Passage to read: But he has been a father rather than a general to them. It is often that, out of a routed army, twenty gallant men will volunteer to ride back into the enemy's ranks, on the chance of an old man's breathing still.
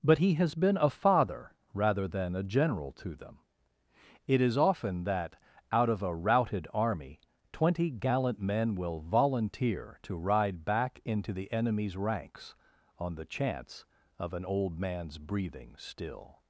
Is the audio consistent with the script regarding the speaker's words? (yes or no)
yes